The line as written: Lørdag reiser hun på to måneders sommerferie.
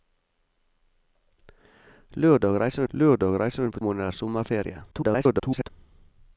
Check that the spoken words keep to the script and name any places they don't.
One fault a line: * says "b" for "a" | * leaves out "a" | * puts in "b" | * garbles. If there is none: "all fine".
* puts in "lørdag reiser"
* leaves out "to"
* garbles